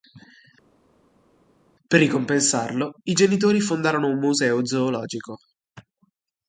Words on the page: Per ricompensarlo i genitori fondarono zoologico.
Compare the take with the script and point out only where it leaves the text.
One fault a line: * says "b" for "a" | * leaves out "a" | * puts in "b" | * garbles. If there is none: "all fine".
* puts in "un museo"